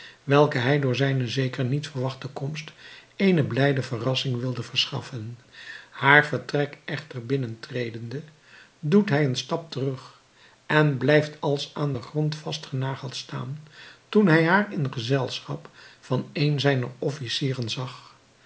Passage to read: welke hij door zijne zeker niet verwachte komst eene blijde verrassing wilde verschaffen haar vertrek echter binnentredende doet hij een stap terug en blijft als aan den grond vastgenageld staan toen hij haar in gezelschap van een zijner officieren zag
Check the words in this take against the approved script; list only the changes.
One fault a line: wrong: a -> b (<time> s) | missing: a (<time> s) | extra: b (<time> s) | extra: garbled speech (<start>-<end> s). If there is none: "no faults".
no faults